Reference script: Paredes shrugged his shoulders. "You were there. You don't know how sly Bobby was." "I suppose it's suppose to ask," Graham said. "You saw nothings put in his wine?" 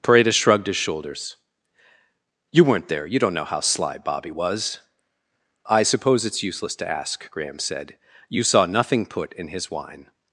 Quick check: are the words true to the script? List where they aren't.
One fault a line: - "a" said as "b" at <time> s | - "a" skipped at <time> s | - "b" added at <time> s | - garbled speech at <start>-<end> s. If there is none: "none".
- "were" said as "weren't" at 2.6 s
- "suppose" said as "useless" at 6.4 s
- "nothings" said as "nothing" at 8.7 s